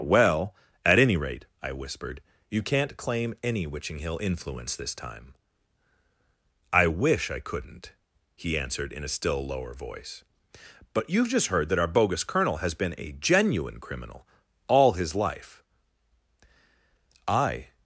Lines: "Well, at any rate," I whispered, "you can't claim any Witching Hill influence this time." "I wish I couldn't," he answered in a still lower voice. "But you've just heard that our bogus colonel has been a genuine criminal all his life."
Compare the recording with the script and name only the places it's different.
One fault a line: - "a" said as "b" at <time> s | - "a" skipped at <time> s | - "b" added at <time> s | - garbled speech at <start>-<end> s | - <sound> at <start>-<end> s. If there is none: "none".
- "I" added at 17.3 s